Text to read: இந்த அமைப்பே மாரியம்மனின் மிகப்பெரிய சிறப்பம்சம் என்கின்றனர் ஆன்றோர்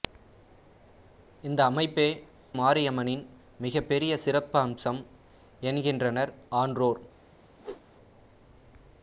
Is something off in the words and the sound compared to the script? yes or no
yes